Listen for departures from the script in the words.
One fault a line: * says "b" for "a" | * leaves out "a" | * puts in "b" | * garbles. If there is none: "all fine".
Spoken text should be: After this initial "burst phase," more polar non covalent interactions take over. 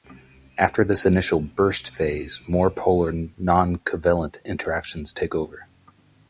all fine